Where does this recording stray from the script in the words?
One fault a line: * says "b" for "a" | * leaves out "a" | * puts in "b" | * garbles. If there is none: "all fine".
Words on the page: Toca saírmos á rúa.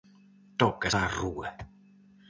* leaves out "saírmos"